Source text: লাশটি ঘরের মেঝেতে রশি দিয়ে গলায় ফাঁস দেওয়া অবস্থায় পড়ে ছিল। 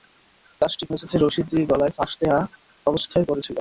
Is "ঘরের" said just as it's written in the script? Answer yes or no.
no